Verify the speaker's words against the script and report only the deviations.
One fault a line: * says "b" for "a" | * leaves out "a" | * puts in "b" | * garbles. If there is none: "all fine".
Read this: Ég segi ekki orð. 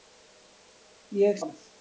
* leaves out "segi ekki"